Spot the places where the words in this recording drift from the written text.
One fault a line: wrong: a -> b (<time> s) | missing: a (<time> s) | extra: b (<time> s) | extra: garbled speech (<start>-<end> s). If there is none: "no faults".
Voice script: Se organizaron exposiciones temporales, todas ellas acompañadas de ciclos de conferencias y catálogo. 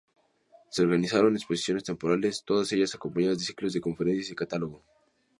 no faults